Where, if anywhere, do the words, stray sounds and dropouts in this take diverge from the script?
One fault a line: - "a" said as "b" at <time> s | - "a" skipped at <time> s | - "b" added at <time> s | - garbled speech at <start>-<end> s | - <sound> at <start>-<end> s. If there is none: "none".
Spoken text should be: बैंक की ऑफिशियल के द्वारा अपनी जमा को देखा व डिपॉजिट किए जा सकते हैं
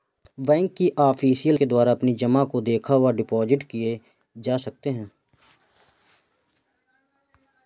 none